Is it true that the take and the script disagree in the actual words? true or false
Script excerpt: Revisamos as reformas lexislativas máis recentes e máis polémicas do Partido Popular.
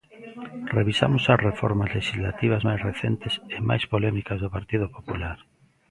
false